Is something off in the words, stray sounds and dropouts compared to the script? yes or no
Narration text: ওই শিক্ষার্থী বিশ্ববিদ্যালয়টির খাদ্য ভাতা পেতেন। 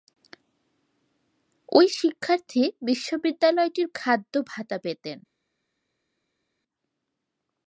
no